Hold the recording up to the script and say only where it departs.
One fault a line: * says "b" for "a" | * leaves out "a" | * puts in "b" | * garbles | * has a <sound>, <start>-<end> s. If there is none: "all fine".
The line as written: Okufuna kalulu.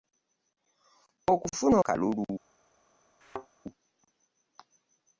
* has a thud, 3.2-3.5 s